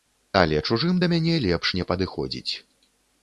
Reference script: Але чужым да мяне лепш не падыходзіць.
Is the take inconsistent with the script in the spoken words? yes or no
no